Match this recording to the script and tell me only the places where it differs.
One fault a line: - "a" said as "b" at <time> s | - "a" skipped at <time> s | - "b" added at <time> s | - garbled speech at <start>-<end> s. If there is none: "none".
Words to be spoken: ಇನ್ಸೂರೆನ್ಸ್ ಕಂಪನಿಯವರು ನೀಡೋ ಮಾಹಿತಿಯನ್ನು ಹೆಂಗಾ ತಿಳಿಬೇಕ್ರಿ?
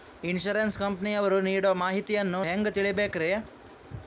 none